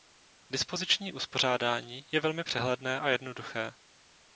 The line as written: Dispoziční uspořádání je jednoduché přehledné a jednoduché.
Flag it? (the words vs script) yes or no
yes